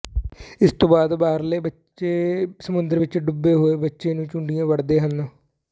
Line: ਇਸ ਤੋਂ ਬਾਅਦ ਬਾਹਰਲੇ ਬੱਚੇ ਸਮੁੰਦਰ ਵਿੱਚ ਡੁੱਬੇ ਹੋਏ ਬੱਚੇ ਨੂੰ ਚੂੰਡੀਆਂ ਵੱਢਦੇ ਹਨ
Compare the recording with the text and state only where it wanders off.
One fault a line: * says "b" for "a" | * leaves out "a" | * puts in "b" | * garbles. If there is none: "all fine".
all fine